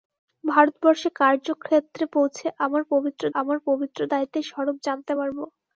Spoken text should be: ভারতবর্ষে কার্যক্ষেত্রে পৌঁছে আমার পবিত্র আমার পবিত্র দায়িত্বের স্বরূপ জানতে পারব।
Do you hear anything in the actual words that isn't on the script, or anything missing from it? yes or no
no